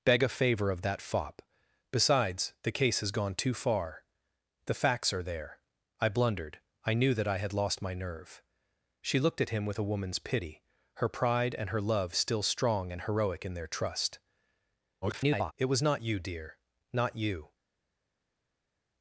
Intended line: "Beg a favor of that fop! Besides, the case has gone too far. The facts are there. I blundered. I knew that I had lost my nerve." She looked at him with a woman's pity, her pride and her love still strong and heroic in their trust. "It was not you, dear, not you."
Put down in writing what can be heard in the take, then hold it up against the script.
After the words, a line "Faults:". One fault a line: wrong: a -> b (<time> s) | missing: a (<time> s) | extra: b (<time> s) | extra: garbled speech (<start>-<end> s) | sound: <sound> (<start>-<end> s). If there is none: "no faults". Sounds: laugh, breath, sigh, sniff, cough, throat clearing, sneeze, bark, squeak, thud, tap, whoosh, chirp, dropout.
"Beg a favor of that fop! Besides, the case has gone too far. The facts are there. I blundered. I knew that I had lost my nerve." She looked at him with a woman's pity, her pride and her love still strong and heroic in their trust. [garbled] "It was not you, dear, not you."
Faults:
extra: garbled speech (15.0-15.5 s)